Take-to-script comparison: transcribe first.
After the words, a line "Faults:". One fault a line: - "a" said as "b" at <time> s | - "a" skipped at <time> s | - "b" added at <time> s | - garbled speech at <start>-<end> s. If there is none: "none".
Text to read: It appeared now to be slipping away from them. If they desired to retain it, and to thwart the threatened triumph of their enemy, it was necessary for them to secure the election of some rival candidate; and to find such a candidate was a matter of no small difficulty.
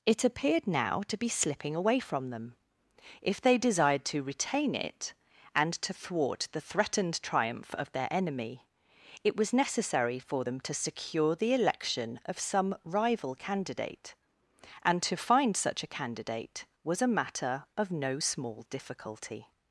It appeared now to be slipping away from them. If they desired to retain it, and to thwart the threatened triumph of their enemy, it was necessary for them to secure the election of some rival candidate; and to find such a candidate was a matter of no small difficulty.
Faults:
none